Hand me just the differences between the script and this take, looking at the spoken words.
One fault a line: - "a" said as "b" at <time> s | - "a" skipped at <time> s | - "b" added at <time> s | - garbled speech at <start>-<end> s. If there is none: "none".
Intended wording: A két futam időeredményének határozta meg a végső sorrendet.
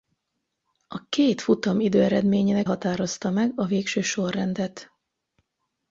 none